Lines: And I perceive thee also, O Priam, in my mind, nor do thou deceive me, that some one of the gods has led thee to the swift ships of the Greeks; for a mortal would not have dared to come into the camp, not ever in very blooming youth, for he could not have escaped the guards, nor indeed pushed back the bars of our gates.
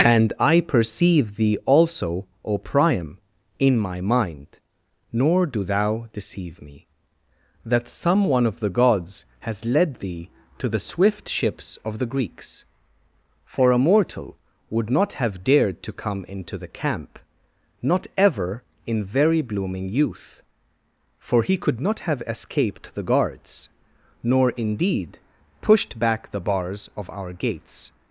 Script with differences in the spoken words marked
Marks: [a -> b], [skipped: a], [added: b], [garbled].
And I perceive thee also, O Priam, in my mind, nor do thou deceive me, that some one of the gods has led thee to the swift ships of the Greeks; for a mortal would not have dared to come into the camp, not ever in very blooming youth, for he could not have escaped the guards, nor indeed pushed back the bars of our gates.